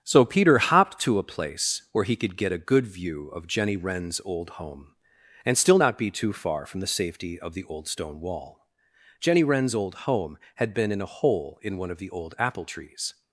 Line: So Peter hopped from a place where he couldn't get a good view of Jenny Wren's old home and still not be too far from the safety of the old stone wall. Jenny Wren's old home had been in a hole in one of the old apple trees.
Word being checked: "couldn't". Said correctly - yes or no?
no